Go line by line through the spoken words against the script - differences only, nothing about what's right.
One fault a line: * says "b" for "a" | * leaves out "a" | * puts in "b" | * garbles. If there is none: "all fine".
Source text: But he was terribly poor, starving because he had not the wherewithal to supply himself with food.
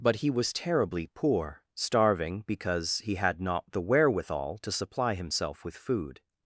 all fine